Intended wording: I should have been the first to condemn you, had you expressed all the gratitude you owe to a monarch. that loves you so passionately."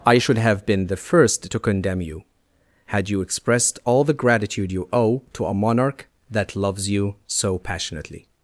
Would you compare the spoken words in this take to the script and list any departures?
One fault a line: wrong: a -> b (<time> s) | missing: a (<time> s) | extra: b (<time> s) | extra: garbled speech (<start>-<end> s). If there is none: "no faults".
no faults